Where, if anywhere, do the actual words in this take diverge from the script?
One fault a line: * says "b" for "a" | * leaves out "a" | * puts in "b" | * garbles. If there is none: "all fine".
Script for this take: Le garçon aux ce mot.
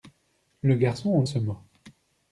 all fine